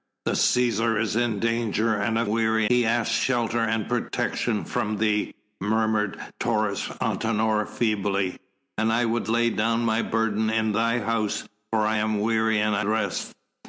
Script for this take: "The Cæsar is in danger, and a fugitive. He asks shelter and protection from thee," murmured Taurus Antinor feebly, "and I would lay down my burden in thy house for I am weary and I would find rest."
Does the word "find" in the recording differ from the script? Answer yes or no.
yes